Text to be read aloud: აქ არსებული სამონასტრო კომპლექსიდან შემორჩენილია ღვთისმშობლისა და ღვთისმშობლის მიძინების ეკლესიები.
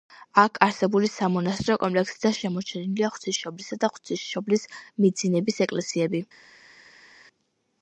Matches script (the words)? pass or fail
pass